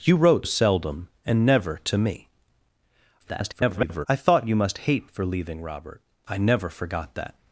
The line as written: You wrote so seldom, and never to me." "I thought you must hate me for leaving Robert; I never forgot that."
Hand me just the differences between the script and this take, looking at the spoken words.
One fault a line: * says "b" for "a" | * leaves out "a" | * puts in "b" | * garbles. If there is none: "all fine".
* leaves out "so"
* garbles
* leaves out "me"